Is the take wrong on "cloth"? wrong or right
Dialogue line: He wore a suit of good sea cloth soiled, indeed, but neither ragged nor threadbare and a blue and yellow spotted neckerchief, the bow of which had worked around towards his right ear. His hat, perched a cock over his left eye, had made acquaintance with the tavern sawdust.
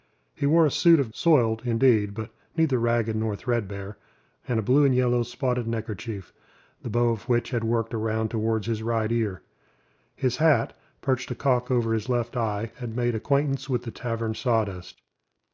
wrong